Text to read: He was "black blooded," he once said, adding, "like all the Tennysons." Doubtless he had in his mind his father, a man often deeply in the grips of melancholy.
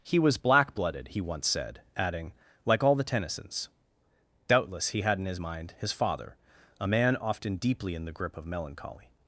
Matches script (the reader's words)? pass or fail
fail